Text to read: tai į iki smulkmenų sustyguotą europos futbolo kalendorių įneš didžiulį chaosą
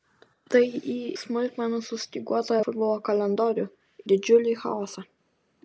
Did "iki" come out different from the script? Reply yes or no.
yes